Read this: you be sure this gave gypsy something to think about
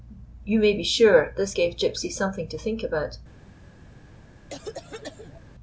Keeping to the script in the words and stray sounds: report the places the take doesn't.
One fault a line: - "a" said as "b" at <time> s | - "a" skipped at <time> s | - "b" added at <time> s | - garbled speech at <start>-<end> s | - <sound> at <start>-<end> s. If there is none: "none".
- "may" added at 0.6 s
- cough at 4.5-5.4 s